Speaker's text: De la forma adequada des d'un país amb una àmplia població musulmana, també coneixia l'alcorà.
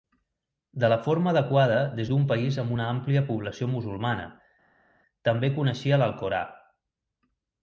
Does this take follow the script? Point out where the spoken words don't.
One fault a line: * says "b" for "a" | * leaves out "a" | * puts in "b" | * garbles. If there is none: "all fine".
all fine